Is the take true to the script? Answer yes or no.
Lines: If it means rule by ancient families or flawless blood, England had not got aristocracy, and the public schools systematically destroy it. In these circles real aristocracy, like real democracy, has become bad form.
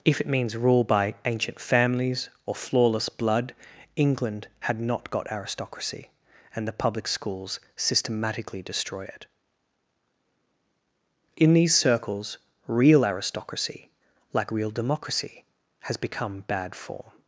yes